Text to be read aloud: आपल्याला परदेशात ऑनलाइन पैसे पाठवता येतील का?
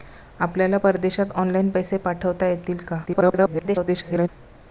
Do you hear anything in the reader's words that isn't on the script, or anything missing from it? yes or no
yes